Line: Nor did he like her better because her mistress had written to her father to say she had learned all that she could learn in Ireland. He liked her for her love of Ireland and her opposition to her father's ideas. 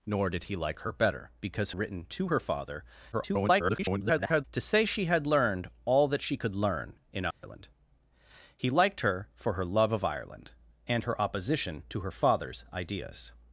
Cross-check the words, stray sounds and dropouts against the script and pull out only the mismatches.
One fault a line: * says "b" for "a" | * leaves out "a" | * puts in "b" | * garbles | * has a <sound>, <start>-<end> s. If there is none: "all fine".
* leaves out "her mistress had"
* garbles
* has a dropout, 7.3-7.4 s